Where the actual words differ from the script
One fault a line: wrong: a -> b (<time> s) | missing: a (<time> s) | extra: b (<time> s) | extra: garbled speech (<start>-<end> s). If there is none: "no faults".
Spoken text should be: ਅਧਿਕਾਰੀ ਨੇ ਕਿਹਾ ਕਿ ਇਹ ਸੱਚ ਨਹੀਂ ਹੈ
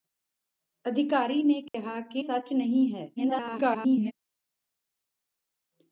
missing: ਇਹ (2.2 s)
extra: garbled speech (3.2-4.1 s)